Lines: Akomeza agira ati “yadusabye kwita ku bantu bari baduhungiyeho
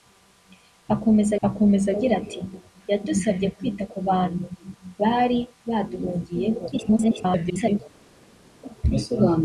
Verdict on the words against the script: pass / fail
fail